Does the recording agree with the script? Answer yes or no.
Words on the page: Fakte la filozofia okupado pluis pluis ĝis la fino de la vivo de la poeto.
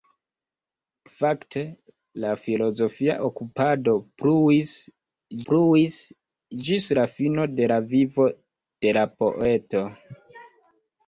yes